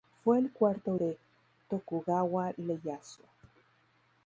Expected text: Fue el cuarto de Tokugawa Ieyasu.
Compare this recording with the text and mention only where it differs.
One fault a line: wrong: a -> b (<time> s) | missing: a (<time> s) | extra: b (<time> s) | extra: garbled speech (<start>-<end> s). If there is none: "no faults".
no faults